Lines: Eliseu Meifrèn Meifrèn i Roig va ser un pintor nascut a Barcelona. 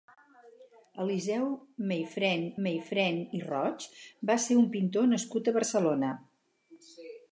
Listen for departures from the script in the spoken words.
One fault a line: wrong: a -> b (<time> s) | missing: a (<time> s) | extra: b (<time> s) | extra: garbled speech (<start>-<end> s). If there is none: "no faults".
no faults